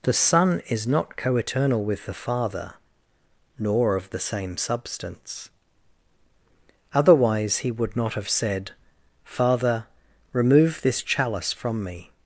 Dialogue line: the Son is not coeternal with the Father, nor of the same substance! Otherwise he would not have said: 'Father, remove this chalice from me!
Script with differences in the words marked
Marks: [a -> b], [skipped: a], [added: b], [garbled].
the Son is not coeternal with the Father, nor of the same substance! Otherwise he would not have said: 'Father, remove this chalice from me!